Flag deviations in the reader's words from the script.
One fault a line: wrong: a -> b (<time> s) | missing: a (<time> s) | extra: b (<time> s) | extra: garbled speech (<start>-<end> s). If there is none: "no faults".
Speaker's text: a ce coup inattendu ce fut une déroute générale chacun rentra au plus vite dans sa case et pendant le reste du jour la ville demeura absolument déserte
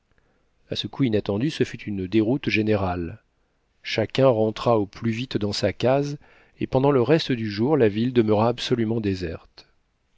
no faults